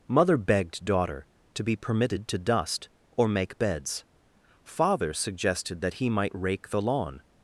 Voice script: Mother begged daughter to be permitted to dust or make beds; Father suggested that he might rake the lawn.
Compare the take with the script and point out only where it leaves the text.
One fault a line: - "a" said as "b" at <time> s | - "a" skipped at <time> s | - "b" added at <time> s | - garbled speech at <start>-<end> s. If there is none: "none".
none